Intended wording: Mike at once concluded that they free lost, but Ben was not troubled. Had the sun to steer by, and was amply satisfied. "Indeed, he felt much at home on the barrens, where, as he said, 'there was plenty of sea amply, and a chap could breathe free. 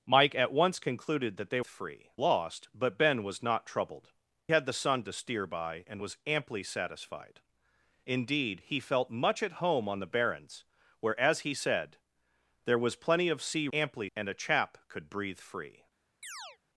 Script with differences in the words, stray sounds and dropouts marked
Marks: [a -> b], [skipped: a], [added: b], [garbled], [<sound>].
Mike at once concluded that they free lost, but Ben was not troubled. Had the sun to steer by, and was amply satisfied. "Indeed, he felt much at home on the barrens, where, as he said, 'there was plenty of sea amply, and a chap could breathe free. [chirp]